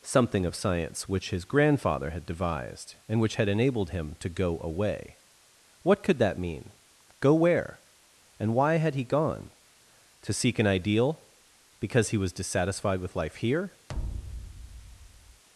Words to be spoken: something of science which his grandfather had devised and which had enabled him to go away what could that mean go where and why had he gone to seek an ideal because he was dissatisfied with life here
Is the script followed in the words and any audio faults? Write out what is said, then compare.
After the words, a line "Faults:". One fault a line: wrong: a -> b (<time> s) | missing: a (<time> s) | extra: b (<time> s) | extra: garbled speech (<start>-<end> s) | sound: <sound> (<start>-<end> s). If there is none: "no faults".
something of science which his grandfather had devised and which had enabled him to go away what could that mean go where and why had he gone to seek an ideal because he was dissatisfied with life here
Faults:
sound: thud (13.9-15.4 s)